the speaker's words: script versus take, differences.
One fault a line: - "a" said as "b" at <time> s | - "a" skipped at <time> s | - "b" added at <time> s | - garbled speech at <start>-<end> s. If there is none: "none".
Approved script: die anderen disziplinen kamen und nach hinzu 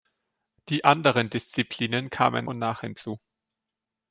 none